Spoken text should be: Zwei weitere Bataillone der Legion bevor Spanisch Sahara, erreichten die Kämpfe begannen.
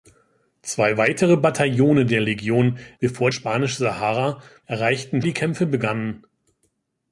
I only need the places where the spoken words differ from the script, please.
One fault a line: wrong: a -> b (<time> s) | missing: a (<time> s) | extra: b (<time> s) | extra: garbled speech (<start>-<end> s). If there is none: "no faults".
no faults